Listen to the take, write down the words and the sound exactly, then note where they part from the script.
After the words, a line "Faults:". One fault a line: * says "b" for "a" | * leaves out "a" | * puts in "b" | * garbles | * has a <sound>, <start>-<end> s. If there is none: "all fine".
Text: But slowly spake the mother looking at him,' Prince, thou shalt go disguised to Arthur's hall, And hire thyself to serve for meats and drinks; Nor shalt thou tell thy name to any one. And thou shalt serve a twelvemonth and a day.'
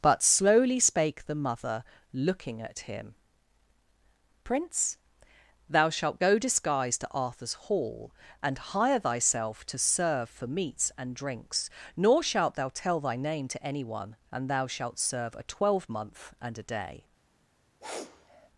But slowly spake the mother looking at him,' Prince, thou shalt go disguised to Arthur's hall, And hire thyself to serve for meats and drinks; Nor shalt thou tell thy name to any one. And thou shalt serve a twelvemonth and a day.'
Faults:
* has a sniff, 17.8-18.5 s